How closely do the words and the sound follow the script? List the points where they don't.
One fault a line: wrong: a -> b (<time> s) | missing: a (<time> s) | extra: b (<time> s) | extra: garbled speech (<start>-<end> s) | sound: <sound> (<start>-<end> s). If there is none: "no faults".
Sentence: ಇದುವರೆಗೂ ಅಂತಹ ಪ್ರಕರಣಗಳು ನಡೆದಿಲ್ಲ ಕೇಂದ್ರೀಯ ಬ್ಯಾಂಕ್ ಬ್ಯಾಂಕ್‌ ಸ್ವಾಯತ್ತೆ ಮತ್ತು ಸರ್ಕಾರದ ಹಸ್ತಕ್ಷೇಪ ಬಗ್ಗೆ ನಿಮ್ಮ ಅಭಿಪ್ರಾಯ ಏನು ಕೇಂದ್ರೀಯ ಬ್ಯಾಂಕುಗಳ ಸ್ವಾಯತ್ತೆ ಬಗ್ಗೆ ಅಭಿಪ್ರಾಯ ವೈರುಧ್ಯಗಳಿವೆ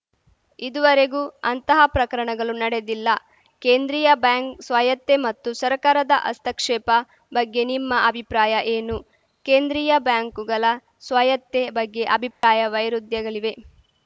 missing: ಬ್ಯಾಂಕ್ (4.6 s)
sound: dropout (12.3-12.4 s)